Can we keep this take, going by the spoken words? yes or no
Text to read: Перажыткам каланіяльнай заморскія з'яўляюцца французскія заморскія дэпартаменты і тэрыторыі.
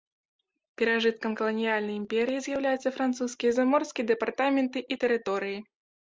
no